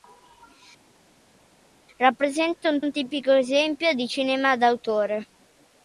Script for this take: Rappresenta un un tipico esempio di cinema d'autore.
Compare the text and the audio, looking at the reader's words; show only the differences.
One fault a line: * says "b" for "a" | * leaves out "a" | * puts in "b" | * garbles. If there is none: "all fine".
all fine